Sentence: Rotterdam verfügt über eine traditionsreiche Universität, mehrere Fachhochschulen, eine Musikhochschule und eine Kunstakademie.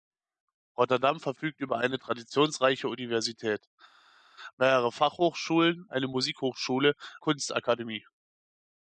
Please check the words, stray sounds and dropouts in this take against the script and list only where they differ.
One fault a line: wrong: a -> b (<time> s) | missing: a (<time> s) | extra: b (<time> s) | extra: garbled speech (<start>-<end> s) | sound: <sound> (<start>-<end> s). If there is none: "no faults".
missing: und eine (6.9 s)